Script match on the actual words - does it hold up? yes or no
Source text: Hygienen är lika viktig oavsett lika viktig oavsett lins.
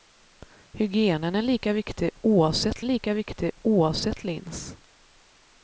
yes